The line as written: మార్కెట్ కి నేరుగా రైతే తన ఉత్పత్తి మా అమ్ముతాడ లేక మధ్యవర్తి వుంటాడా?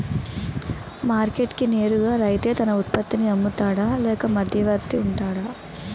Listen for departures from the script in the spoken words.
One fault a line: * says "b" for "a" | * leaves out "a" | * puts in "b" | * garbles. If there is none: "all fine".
* says "నీ" for "మా"